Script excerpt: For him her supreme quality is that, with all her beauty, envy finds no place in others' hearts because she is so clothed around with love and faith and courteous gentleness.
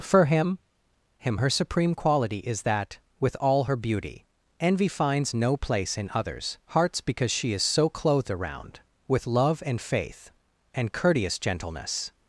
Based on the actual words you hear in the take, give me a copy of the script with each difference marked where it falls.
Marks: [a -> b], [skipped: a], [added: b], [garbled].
For him [added: him] her supreme quality is that, with all her beauty, envy finds no place in others' hearts because she is so clothed around with love and faith and courteous gentleness.